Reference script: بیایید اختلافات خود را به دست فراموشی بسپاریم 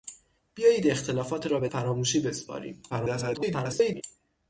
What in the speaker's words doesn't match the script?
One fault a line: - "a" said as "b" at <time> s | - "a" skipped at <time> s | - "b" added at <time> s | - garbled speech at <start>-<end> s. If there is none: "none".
- "خود" skipped at 1.5 s
- "دست" skipped at 1.7 s
- garbled speech at 2.9-4.0 s